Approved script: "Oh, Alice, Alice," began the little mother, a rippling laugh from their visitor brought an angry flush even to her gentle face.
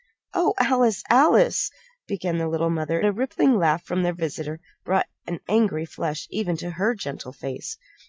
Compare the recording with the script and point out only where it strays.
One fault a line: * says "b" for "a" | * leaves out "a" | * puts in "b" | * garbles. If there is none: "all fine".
all fine